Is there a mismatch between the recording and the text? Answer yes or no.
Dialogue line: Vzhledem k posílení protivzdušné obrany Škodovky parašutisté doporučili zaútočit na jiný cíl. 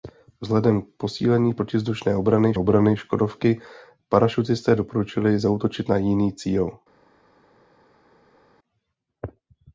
yes